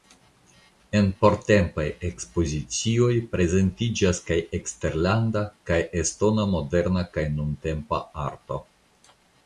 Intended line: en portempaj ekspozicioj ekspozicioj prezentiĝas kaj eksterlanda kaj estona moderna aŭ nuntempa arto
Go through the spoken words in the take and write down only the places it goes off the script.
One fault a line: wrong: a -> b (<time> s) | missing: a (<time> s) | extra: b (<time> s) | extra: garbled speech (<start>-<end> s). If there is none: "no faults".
missing: ekspozicioj (3.1 s)
wrong: aŭ -> kaj (7.2 s)